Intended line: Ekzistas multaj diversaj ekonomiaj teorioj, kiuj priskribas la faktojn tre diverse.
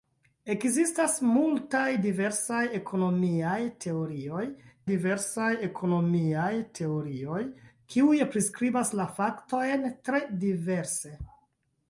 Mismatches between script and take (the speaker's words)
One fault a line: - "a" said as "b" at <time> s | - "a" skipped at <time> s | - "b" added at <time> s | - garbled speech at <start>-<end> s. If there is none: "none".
- "diversaj ekonomiaj teorioj" added at 4.9 s